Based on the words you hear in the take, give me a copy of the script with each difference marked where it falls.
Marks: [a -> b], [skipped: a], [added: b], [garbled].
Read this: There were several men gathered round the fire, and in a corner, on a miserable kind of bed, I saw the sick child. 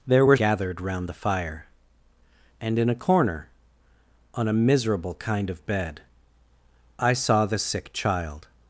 There were [skipped: several men] gathered round the fire, and in a corner, on a miserable kind of bed, I saw the sick child.